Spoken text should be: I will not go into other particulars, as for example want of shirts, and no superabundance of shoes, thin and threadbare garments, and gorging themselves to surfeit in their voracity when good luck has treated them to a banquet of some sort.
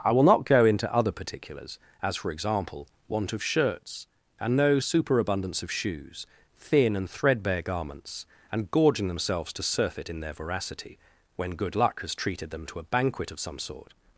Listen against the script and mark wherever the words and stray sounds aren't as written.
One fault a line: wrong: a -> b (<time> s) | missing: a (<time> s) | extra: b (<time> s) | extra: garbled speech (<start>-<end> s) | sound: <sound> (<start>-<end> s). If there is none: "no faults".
no faults